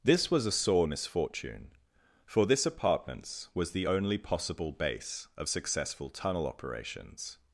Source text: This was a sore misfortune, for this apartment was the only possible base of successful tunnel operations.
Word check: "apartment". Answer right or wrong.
wrong